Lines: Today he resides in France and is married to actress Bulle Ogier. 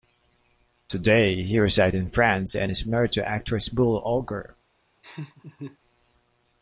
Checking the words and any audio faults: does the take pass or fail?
fail